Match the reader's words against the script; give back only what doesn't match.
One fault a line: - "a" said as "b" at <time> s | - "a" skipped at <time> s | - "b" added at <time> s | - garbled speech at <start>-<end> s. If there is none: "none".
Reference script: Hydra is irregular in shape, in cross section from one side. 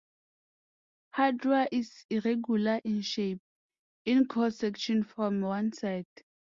none